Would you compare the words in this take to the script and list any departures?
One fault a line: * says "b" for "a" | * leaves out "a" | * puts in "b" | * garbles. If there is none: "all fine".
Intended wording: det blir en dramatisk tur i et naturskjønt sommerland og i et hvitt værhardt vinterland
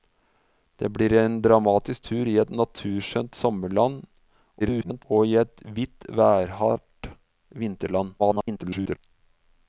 * garbles
* garbles